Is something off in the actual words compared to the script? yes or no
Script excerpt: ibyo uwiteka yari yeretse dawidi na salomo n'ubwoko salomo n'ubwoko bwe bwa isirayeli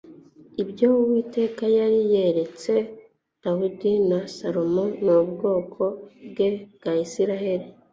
yes